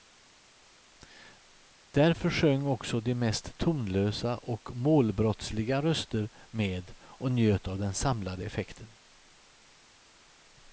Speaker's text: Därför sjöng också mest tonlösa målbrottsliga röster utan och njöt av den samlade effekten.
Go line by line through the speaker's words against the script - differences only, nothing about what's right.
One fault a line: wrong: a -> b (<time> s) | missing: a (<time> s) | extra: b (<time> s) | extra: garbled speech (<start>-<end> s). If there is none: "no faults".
extra: de (3.0 s)
extra: och (4.4 s)
wrong: utan -> med (6.5 s)